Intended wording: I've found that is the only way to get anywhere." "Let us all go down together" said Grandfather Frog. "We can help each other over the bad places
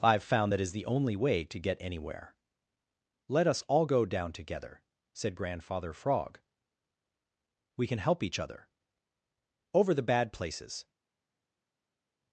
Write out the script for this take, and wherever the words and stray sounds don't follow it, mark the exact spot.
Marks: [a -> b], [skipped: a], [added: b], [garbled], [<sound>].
I've found that is the only way to get anywhere." "Let us all go down together" said Grandfather Frog. "We can help each other over the bad places